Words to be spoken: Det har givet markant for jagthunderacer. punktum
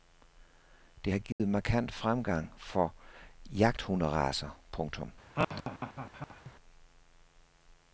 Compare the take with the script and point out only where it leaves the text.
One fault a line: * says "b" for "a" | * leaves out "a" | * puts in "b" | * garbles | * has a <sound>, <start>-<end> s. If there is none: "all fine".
* has a dropout, 1.3-1.4 s
* puts in "fremgang"
* has a laugh, 5.4-6.5 s